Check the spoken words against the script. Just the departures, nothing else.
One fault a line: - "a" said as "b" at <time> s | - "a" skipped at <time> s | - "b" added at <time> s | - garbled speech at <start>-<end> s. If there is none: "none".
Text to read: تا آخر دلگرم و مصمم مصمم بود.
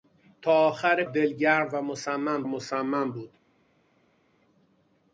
none